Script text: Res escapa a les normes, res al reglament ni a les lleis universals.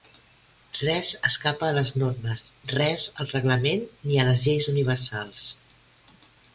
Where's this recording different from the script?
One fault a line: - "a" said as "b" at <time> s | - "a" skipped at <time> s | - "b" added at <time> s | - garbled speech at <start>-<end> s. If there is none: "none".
none